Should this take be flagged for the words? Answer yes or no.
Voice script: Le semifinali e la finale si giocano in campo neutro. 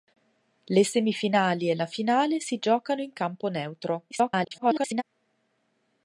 yes